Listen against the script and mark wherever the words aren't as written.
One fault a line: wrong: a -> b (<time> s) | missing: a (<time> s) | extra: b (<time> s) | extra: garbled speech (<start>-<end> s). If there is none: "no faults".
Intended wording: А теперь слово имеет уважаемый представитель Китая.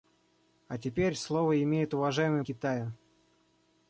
missing: представитель (2.4 s)